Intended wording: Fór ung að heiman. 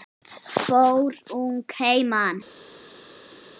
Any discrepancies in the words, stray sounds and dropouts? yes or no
no